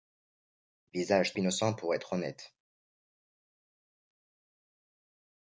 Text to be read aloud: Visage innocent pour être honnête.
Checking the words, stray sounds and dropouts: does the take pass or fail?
pass